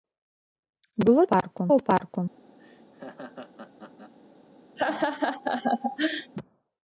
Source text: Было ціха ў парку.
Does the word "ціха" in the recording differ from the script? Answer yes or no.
yes